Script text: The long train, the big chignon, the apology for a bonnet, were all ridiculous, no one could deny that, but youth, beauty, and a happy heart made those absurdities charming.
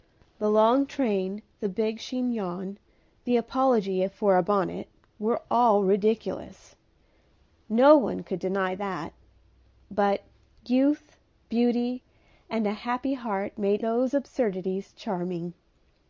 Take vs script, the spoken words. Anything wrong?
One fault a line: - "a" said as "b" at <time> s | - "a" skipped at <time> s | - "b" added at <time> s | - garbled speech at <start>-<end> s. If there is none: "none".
none